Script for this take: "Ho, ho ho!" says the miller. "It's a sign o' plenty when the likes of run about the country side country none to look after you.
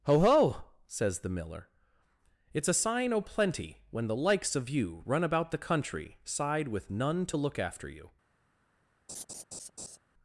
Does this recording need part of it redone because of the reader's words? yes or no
yes